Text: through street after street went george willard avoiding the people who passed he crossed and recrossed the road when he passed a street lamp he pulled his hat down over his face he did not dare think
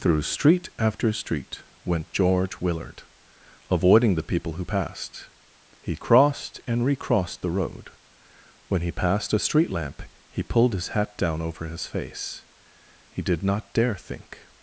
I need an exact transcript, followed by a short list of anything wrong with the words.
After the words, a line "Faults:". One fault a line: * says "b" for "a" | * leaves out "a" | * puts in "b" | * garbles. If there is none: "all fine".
through street after street went george willard avoiding the people who passed he crossed and recrossed the road when he passed a street lamp he pulled his hat down over his face he did not dare think
Faults:
all fine